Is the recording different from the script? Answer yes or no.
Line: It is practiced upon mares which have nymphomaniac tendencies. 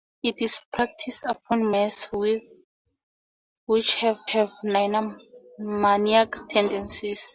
yes